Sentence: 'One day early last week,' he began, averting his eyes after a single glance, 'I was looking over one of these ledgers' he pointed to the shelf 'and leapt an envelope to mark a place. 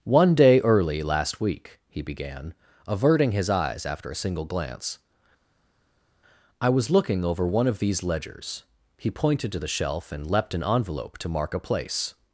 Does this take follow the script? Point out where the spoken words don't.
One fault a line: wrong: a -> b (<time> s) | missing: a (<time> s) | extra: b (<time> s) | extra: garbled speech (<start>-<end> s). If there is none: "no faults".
no faults